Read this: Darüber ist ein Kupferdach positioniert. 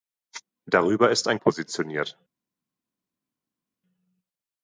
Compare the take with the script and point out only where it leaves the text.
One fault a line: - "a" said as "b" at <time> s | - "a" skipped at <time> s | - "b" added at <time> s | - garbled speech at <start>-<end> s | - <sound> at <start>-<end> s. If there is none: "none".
- "Kupferdach" skipped at 1.4 s